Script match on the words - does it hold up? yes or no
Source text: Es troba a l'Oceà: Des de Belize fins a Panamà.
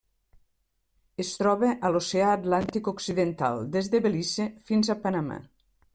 no